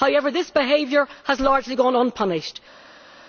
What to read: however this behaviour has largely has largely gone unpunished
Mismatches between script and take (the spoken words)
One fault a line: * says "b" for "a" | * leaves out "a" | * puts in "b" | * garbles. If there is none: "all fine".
* leaves out "has largely"